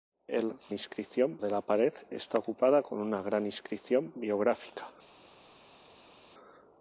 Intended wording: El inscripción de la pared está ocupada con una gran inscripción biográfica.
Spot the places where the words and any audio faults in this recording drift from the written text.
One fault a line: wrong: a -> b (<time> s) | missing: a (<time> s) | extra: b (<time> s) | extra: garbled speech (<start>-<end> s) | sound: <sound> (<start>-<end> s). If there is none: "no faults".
no faults